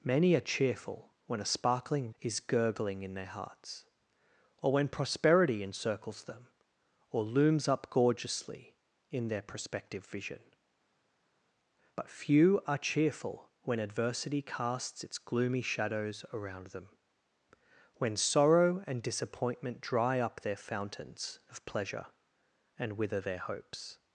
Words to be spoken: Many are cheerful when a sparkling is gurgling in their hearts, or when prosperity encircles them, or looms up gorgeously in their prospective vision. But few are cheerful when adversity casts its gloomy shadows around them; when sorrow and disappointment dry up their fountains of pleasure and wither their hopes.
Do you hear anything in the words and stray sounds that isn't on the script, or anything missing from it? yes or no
no